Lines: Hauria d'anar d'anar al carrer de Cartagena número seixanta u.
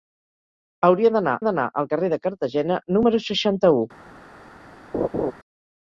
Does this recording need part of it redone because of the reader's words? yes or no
no